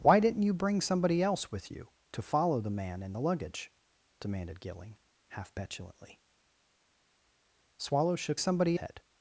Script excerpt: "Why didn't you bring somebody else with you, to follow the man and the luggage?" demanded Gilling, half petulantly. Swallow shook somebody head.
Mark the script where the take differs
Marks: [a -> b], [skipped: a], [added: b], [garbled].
"Why didn't you bring somebody else with you, to follow the man and the luggage?" demanded Gilling, half petulantly. Swallow shook somebody head.